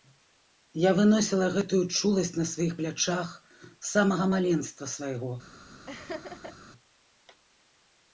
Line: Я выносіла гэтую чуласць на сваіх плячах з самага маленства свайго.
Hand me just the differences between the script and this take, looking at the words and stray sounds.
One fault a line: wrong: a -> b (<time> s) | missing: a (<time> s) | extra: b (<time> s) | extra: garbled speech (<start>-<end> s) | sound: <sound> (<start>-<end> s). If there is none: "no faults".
sound: laugh (5.9-6.6 s)